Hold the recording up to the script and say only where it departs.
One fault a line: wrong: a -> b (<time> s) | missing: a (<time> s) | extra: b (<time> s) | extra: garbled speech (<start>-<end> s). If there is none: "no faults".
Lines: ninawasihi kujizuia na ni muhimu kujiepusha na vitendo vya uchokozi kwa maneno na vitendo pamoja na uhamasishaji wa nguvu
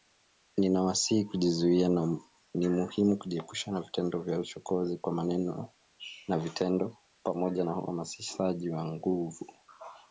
no faults